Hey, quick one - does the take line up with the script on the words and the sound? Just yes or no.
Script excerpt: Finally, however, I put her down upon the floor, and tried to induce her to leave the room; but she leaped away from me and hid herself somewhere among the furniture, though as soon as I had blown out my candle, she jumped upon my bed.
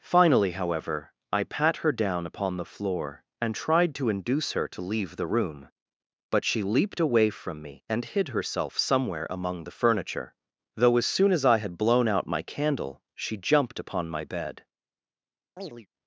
no